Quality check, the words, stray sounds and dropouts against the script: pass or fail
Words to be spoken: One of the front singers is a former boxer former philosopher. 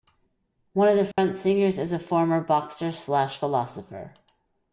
fail